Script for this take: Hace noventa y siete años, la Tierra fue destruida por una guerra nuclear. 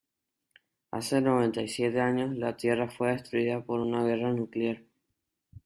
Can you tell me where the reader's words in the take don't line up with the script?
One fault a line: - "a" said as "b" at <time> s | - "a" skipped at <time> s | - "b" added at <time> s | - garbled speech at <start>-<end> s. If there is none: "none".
none